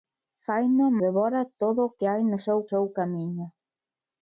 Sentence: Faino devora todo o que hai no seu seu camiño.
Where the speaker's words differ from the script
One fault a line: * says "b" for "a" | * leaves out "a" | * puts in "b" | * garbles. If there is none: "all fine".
all fine